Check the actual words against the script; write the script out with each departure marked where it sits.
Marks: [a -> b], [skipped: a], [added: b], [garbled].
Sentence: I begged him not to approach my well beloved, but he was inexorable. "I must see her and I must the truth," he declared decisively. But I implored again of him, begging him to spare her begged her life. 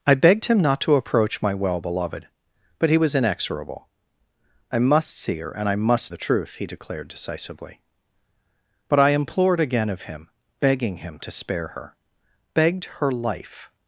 I begged him not to approach my well beloved, but he was inexorable. "I must see her and I must the truth," he declared decisively. But I implored again of him, begging him to spare her begged her life.